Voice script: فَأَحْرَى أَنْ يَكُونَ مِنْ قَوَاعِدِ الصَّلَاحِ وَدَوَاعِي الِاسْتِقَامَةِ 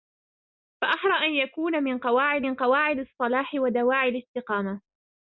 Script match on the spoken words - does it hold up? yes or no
no